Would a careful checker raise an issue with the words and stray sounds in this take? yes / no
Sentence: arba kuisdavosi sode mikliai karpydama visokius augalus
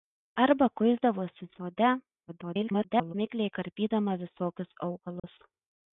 yes